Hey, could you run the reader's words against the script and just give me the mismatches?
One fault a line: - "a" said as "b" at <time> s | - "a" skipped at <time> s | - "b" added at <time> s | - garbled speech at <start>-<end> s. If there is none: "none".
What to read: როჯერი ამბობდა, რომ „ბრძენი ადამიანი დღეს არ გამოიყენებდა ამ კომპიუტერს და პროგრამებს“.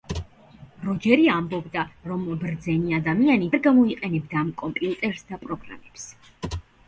- "დღეს" skipped at 3.5 s